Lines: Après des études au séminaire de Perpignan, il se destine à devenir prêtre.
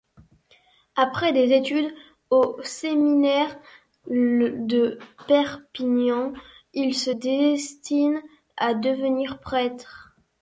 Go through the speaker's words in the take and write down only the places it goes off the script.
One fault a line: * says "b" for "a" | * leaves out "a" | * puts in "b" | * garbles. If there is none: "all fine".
all fine